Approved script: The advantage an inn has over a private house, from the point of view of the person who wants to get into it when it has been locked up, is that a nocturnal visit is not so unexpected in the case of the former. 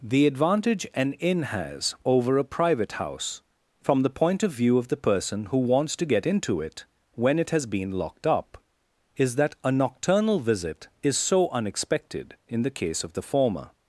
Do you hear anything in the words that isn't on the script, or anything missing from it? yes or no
yes